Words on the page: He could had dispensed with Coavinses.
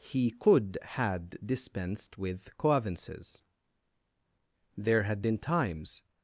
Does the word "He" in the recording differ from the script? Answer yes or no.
no